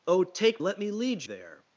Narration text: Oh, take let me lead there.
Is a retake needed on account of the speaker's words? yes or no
no